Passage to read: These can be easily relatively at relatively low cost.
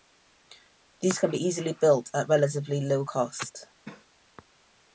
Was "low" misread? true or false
false